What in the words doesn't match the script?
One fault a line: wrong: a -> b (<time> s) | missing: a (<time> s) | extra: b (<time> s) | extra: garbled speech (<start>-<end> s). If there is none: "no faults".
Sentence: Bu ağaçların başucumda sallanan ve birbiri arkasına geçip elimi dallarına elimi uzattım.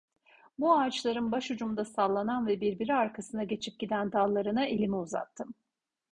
wrong: elimi -> giden (3.8 s)